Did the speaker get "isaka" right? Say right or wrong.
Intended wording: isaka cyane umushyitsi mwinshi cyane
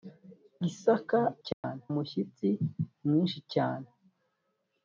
right